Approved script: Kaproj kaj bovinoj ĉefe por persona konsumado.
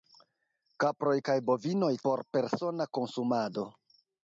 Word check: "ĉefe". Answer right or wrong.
wrong